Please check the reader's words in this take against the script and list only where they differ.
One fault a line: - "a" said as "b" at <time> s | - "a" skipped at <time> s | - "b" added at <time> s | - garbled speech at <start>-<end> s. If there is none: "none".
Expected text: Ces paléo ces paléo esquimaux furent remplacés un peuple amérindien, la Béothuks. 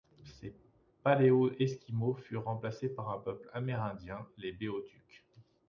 - "ces paléo" skipped at 1.5 s
- "par" added at 3.0 s
- "la" said as "les" at 4.3 s